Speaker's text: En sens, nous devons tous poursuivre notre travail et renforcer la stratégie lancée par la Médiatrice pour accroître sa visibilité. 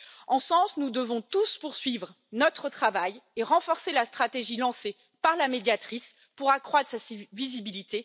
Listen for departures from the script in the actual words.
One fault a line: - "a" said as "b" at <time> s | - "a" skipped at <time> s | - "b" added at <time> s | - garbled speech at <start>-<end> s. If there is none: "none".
none